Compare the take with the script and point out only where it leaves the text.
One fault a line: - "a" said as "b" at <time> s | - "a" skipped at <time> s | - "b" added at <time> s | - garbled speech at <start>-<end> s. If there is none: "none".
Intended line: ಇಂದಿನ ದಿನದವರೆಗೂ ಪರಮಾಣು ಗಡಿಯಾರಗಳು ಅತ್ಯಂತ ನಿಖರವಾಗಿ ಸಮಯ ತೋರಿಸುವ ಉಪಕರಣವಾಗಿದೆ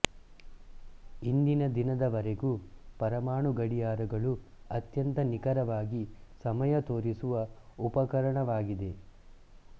none